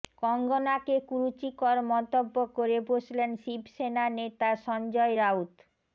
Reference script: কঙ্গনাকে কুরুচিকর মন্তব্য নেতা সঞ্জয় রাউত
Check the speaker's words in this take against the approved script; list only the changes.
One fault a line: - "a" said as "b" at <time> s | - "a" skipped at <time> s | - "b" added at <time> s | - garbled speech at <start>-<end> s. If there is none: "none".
- "করে বসলেন শিবসেনা" added at 2.6 s